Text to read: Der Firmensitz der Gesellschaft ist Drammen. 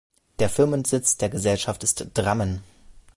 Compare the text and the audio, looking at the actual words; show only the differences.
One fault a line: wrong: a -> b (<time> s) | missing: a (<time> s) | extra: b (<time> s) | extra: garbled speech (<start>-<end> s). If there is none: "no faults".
no faults